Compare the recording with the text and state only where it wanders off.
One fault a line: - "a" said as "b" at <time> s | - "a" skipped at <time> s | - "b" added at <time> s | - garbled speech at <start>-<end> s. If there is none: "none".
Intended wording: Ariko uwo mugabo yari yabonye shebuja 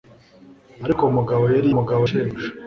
- "yabonye" said as "mugabo" at 1.8 s